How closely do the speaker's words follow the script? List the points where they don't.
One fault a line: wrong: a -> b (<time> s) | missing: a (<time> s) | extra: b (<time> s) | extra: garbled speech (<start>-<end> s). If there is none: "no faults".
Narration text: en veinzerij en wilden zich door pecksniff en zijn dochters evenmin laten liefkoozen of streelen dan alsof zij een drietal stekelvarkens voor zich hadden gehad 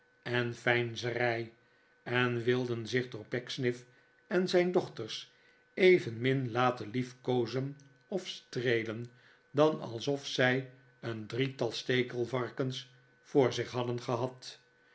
no faults